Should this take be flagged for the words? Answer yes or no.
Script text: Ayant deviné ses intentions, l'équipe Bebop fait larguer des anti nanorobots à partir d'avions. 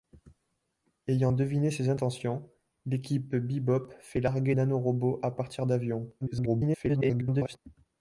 yes